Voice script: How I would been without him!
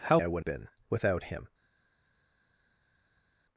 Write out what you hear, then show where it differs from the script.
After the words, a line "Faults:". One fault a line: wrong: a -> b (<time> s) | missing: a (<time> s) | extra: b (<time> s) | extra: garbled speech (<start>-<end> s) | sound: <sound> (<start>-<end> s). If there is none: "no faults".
How I would been without him!
Faults:
no faults